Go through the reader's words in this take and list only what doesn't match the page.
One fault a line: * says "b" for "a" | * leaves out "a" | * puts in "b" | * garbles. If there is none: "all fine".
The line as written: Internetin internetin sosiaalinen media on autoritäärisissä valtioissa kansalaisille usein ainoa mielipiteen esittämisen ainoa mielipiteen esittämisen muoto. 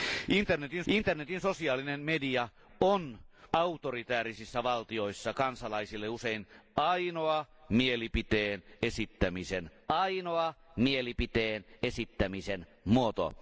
all fine